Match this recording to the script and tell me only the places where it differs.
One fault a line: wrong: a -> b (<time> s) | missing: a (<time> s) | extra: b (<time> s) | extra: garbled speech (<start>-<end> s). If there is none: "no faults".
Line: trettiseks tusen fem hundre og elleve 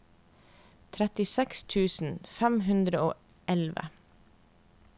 no faults